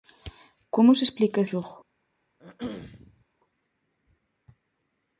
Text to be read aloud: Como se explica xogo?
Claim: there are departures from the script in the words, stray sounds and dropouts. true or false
true